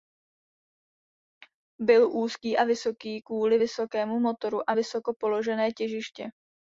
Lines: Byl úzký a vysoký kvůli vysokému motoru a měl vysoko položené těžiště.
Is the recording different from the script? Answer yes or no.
yes